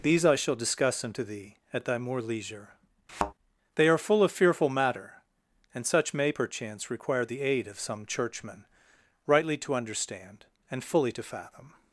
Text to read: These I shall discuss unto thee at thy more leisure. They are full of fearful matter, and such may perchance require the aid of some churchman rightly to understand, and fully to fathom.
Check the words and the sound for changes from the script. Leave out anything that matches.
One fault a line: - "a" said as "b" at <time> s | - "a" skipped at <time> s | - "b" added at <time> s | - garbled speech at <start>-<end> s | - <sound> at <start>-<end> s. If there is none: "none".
- thud at 3.1-3.3 s